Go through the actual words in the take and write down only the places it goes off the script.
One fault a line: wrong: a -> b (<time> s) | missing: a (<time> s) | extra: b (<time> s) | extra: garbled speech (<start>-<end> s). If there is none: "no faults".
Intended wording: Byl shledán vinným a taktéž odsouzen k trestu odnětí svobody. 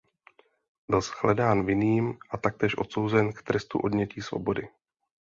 no faults